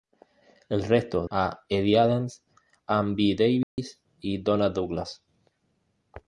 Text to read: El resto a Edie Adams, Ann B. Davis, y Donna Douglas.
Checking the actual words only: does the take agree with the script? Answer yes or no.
yes